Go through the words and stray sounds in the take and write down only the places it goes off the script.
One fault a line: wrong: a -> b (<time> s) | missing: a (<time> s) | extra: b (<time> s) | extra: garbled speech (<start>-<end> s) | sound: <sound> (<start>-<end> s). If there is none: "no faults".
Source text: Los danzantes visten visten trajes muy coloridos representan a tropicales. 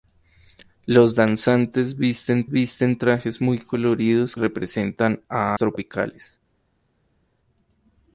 no faults